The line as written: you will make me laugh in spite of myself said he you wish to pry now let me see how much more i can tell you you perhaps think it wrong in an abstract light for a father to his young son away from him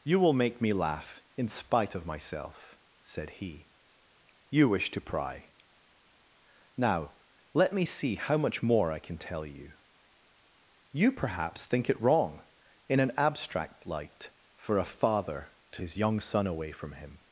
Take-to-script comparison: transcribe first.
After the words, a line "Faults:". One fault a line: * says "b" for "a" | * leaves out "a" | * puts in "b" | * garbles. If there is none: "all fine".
you will make me laugh in spite of myself said he you wish to pry now let me see how much more i can tell you you perhaps think it wrong in an abstract light for a father to his young son away from him
Faults:
all fine